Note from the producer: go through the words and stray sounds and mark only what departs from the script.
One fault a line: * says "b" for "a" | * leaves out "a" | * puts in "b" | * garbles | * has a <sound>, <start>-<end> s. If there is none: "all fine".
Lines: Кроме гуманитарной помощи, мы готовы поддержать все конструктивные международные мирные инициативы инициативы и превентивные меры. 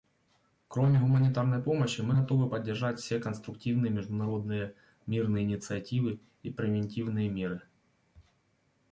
* leaves out "инициативы"